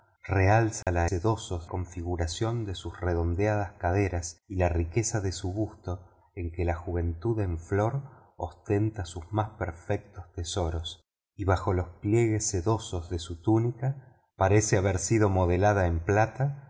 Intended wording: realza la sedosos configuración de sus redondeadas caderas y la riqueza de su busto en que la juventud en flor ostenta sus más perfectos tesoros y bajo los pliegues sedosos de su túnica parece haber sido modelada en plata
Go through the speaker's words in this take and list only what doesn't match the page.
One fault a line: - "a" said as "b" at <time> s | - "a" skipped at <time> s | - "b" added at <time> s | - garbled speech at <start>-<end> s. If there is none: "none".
none